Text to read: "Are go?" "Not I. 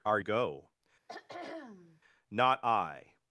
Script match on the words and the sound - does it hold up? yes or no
no